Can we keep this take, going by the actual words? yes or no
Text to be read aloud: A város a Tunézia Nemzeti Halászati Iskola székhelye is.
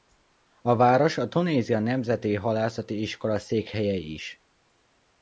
yes